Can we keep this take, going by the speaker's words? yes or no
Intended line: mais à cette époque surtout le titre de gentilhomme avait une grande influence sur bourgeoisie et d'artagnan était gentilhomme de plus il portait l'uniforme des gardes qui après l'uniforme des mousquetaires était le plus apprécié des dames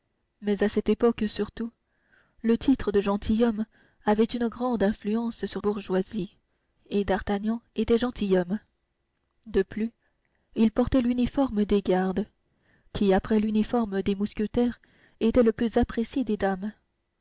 yes